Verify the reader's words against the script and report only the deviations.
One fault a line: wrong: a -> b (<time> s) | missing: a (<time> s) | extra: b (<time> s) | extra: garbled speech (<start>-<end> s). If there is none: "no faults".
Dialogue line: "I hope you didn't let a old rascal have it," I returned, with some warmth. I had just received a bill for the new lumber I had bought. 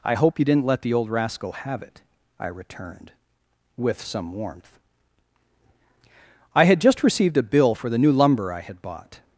wrong: a -> the (0.8 s)